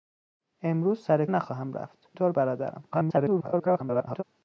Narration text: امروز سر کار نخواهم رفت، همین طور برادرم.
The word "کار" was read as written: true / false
false